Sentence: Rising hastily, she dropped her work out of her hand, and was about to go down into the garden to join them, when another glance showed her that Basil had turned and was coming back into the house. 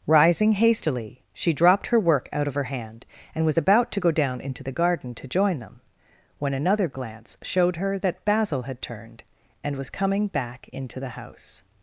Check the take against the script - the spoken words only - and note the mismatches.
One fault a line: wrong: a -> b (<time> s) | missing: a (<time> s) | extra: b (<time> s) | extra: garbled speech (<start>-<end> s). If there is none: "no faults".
no faults